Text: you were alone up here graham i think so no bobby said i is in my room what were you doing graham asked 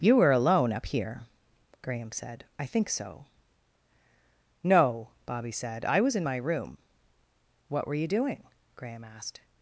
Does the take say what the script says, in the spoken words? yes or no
no